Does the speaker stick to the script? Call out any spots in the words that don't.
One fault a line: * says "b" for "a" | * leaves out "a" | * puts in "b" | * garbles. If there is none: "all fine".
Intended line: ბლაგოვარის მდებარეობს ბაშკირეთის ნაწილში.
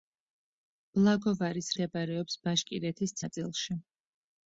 all fine